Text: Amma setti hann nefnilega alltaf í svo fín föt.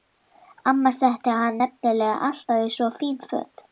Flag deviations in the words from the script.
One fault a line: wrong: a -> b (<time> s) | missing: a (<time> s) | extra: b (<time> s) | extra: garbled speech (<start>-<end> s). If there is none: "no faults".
no faults